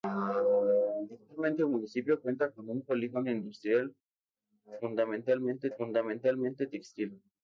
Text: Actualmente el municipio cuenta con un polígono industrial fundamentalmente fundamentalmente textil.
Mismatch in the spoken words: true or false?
false